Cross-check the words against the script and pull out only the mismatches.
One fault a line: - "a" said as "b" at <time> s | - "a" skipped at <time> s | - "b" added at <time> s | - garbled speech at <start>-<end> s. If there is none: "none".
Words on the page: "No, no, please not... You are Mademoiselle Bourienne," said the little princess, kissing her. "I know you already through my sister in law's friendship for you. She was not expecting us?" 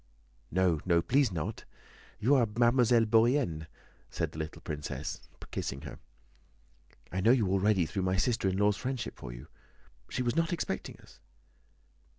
none